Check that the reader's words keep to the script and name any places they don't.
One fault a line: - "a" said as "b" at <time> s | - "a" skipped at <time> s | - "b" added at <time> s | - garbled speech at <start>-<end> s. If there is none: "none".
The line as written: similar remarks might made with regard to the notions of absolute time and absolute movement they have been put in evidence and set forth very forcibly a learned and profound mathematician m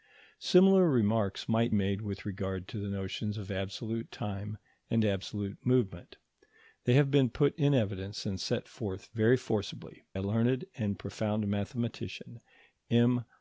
none